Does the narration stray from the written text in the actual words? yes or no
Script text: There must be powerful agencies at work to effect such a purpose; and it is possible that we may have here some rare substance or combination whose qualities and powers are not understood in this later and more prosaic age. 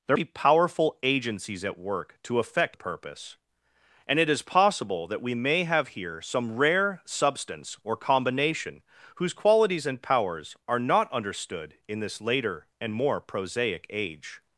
yes